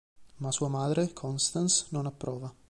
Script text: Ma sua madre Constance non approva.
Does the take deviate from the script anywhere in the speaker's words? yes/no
no